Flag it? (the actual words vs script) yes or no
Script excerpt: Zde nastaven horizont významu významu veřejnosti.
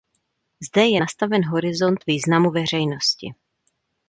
yes